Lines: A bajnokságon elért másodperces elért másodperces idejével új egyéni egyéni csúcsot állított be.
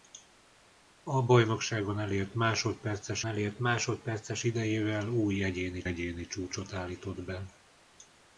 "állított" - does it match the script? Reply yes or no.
yes